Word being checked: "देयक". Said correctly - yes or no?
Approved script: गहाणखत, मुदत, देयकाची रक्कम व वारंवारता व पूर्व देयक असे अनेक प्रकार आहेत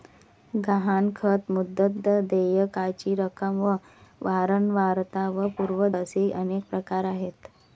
no